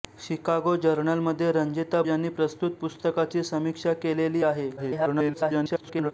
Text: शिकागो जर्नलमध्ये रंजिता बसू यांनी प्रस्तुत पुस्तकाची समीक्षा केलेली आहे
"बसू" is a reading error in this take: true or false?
true